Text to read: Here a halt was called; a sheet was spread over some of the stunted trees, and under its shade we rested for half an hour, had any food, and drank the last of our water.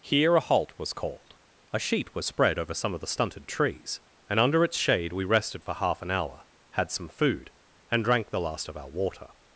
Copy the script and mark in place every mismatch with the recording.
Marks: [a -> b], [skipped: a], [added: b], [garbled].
Here a halt was called; a sheet was spread over some of the stunted trees, and under its shade we rested for half an hour, had [any -> some] food, and drank the last of our water.